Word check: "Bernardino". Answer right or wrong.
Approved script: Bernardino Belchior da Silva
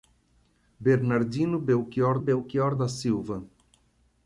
right